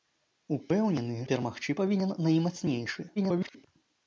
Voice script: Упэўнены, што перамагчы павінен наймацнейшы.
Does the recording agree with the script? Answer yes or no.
no